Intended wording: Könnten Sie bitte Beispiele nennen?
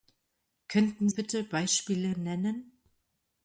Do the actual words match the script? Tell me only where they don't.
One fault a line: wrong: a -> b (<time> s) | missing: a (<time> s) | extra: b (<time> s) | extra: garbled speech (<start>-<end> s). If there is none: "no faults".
missing: Sie (1.1 s)